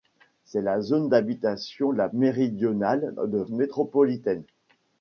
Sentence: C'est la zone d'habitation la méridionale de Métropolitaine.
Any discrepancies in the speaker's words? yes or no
no